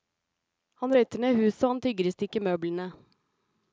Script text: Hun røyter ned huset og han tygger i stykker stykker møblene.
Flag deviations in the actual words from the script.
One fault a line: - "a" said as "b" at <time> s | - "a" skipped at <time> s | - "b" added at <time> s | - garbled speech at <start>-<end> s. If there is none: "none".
- "Hun" said as "Han" at 0.8 s
- "stykker" skipped at 2.5 s